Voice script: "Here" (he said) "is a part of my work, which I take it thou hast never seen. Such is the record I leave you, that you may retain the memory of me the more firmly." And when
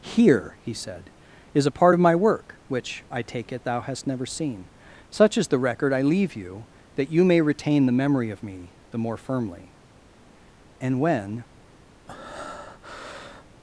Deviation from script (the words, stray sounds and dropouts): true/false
true